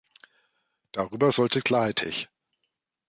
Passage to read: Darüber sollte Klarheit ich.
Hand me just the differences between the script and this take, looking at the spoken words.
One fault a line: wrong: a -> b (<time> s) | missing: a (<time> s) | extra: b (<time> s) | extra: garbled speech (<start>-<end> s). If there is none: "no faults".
no faults